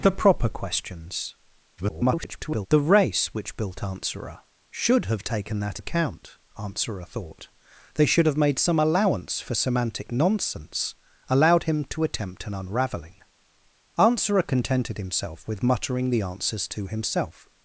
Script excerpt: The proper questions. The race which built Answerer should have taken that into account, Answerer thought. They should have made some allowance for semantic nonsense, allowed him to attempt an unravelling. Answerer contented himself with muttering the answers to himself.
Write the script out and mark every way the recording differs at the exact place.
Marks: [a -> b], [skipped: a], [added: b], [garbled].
The proper questions. [garbled] The race which built Answerer should have taken that [skipped: into] account, Answerer thought. They should have made some allowance for semantic nonsense, allowed him to attempt an unravelling. Answerer contented himself with muttering the answers to himself.